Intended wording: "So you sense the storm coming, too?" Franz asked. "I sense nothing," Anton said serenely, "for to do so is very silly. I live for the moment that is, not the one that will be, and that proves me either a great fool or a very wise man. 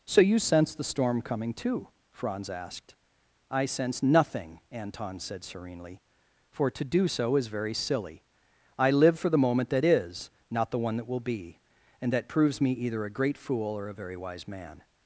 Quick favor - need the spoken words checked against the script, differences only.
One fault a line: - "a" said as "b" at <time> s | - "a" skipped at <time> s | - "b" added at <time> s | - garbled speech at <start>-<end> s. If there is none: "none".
none